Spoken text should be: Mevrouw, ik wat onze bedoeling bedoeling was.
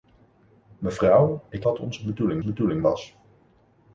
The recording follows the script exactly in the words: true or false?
true